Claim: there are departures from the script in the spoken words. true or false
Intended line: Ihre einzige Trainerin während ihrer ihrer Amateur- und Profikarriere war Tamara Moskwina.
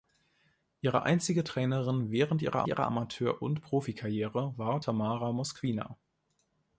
false